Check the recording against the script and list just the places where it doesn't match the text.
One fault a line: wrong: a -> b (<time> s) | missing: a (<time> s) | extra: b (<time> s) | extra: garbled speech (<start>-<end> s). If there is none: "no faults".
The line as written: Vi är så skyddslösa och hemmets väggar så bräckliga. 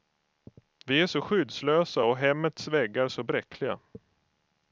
no faults